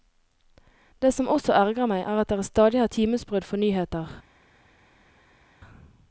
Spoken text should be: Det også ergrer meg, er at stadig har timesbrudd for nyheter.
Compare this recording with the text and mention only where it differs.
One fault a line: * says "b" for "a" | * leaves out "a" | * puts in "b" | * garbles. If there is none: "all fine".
* puts in "som"
* puts in "dere"